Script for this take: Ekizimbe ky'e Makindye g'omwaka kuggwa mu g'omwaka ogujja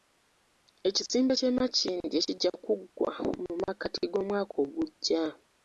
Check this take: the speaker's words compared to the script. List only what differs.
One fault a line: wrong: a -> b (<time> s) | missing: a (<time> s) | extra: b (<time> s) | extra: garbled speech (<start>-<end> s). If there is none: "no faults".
wrong: g'omwaka -> kijja (2.2 s)
extra: makkati (3.6 s)